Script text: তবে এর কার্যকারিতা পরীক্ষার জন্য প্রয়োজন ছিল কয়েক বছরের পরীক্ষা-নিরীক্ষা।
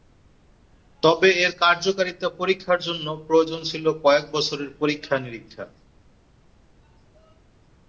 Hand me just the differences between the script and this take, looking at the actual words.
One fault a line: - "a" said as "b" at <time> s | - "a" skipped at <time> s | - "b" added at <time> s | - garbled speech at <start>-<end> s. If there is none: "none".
none